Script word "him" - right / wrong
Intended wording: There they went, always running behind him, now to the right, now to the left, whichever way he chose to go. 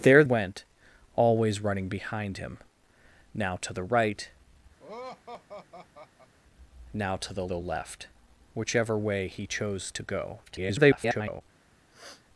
right